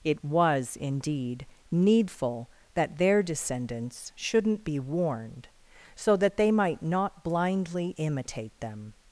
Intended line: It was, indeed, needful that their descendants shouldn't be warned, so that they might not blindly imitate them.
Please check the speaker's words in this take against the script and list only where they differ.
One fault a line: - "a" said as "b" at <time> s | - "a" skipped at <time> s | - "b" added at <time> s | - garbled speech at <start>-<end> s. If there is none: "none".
none